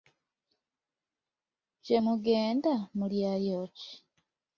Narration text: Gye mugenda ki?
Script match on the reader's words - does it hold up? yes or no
no